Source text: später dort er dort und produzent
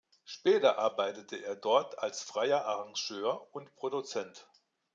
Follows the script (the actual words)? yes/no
no